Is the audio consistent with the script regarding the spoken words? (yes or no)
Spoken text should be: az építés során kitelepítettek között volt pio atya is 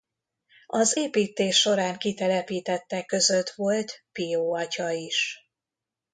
yes